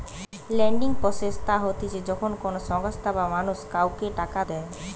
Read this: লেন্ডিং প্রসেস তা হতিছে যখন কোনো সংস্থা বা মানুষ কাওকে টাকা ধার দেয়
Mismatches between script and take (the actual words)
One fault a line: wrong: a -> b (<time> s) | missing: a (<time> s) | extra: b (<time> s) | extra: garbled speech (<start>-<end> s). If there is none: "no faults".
missing: ধার (4.4 s)